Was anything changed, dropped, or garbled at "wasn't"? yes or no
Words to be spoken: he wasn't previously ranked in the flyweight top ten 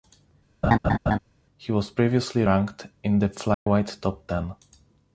yes